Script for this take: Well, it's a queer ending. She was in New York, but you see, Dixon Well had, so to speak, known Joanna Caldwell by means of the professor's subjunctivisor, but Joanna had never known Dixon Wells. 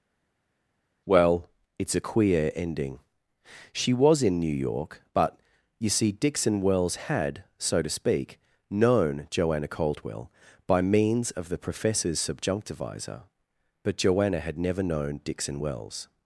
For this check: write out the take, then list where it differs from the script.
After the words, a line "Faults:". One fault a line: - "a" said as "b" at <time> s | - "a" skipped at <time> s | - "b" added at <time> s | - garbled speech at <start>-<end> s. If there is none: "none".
Well, it's a queer ending. She was in New York, but you see, Dixon Wells had, so to speak, known Joanna Caldwell by means of the professor's subjunctivisor, but Joanna had never known Dixon Wells.
Faults:
- "Well" said as "Wells" at 6.6 s